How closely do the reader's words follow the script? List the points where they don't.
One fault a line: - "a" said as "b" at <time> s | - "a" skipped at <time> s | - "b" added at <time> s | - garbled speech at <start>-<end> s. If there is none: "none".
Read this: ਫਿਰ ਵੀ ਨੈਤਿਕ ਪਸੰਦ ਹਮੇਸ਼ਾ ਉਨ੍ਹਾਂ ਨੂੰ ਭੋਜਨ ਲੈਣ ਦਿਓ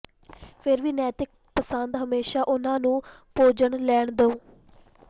none